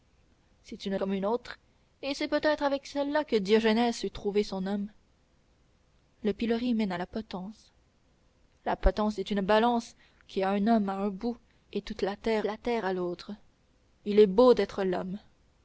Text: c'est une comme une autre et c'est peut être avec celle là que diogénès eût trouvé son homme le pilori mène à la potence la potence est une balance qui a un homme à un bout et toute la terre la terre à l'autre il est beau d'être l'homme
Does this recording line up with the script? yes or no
yes